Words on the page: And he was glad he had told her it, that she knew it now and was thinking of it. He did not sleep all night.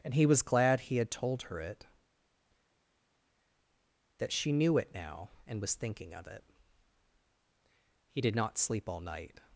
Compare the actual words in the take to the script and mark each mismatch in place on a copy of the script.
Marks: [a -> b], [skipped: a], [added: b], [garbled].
And he was glad he had told her it, that she knew it now and was thinking of it. He did not sleep all night.